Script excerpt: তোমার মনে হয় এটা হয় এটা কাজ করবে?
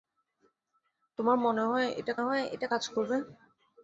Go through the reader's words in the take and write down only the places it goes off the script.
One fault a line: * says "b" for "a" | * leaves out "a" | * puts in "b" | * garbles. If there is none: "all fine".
all fine